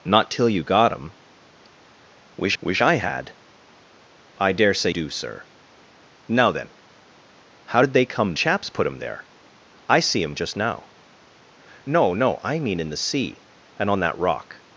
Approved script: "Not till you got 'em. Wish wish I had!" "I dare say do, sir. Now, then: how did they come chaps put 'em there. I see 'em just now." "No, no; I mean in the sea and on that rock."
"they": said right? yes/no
yes